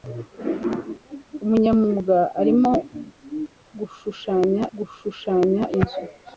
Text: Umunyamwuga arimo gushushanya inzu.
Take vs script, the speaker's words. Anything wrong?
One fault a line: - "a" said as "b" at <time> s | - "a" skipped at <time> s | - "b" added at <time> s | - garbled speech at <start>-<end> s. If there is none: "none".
- "gushushanya" added at 4.8 s